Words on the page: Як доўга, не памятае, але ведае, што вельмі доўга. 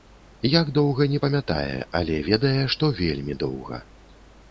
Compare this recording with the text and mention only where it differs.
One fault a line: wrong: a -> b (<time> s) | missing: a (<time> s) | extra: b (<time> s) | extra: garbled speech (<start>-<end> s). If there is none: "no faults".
no faults